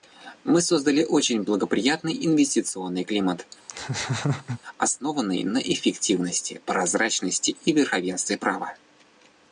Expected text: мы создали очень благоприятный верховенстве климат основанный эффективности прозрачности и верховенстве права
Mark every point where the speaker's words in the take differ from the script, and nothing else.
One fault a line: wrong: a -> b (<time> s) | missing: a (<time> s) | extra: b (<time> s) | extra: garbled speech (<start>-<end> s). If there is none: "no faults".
wrong: верховенстве -> инвестиционный (2.2 s)
extra: на (5.4 s)